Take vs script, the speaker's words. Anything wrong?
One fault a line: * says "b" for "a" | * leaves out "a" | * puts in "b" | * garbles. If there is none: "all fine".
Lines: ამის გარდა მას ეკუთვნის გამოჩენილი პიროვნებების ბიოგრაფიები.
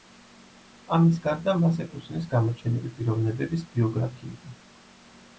all fine